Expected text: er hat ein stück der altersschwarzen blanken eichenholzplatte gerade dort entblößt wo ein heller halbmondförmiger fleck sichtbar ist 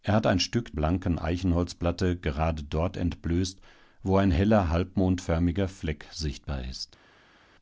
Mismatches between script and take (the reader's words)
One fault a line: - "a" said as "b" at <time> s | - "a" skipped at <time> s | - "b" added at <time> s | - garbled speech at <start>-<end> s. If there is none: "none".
- "der altersschwarzen" skipped at 0.7 s